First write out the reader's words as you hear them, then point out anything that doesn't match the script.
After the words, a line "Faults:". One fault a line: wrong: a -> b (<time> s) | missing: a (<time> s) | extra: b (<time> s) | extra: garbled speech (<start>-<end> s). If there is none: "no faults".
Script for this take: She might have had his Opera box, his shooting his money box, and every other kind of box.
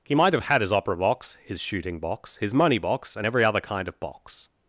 He might have had his Opera box, his shooting box, his money box, and every other kind of box.
Faults:
wrong: She -> He (0.0 s)
extra: box (2.0 s)